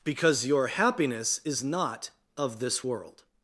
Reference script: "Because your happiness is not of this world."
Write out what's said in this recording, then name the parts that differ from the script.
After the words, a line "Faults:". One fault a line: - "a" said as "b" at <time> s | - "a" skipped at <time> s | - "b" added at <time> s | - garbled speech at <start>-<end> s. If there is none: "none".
"Because your happiness is not of this world."
Faults:
none